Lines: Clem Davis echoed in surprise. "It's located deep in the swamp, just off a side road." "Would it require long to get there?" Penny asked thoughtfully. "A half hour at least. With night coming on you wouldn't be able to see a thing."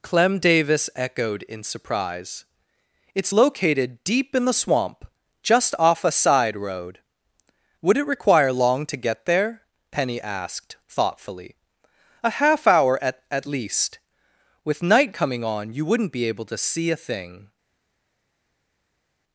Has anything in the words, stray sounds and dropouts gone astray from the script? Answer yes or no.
yes